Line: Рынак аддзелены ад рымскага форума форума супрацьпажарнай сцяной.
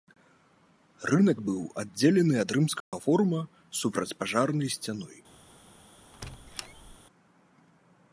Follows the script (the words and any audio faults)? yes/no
no